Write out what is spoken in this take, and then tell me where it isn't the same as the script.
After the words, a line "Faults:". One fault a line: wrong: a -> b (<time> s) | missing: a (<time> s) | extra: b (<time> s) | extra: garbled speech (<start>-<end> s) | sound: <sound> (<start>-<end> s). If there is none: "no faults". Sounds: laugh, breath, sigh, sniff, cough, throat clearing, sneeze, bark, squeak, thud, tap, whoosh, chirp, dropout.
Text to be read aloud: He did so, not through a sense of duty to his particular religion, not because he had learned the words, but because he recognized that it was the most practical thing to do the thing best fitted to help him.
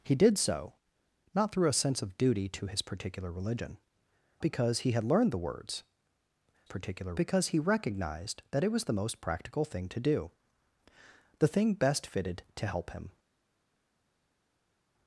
He did so, not through a sense of duty to his particular religion, because he had learned the words, particular because he recognized that it was the most practical thing to do the thing best fitted to help him.
Faults:
missing: not (3.8 s)
wrong: but -> particular (6.6 s)